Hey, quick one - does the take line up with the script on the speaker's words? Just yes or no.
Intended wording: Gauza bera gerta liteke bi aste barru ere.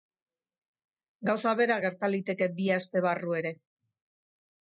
yes